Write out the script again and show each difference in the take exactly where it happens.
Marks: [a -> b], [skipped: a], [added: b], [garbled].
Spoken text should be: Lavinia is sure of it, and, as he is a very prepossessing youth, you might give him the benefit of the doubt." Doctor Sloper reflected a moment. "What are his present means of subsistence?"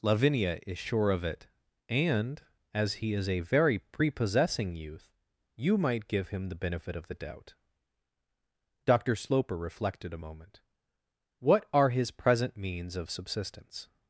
Lavinia is sure of it, and, as he is a very prepossessing youth, you might give him the benefit of the doubt." Doctor Sloper reflected a moment. "What are his present means of subsistence?"